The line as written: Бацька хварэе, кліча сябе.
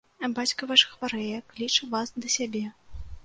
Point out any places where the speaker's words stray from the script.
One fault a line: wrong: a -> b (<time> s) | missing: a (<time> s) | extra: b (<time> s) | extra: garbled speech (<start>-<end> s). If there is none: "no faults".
extra: ваш (0.7 s)
extra: вас да (1.9 s)